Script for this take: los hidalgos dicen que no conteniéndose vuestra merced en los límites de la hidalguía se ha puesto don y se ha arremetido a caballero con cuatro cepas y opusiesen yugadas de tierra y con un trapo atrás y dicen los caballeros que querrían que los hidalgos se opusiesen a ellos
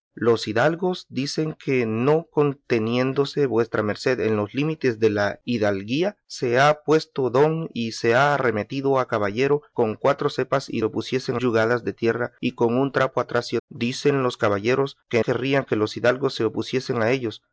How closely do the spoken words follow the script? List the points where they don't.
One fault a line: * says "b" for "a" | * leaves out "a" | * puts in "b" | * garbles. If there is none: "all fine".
all fine